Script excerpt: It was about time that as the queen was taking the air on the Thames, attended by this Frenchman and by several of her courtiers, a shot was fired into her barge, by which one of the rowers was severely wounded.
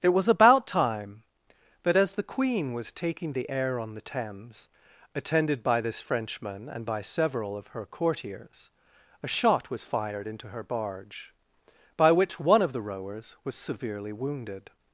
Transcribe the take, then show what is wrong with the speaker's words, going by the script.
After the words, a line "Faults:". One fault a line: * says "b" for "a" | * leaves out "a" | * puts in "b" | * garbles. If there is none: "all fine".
It was about time that as the queen was taking the air on the Thames, attended by this Frenchman and by several of her courtiers, a shot was fired into her barge, by which one of the rowers was severely wounded.
Faults:
all fine